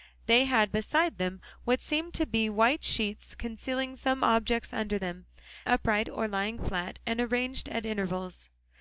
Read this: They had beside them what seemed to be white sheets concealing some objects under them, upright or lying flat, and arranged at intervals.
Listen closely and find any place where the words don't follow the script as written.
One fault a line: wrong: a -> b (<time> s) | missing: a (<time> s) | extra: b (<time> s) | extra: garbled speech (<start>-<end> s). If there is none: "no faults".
no faults